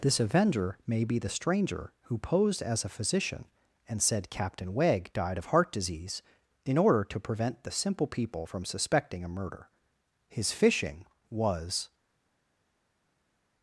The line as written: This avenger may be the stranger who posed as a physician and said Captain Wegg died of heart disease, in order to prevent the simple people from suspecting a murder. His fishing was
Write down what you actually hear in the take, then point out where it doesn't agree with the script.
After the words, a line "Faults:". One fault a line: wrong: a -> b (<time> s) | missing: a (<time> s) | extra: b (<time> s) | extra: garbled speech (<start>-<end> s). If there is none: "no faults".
This avenger may be the stranger who posed as a physician and said Captain Wegg died of heart disease, in order to prevent the simple people from suspecting a murder. His fishing was
Faults:
no faults